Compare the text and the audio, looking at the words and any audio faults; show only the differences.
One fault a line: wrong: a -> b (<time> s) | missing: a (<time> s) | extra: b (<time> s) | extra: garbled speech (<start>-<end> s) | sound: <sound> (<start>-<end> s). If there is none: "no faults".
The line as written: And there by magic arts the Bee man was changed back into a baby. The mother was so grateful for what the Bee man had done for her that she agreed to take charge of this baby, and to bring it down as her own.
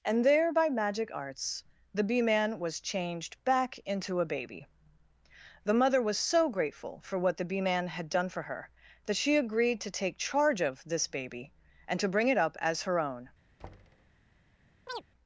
wrong: down -> up (12.4 s)
sound: thud (13.6-14.1 s)
sound: chirp (14.9-15.0 s)